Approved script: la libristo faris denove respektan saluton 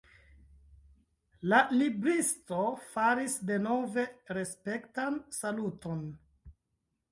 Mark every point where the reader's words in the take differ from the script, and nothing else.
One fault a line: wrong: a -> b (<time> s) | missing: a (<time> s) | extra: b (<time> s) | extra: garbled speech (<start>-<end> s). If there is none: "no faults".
no faults